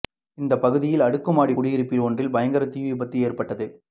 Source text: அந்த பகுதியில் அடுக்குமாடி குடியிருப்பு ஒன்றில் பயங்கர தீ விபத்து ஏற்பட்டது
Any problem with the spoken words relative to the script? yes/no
yes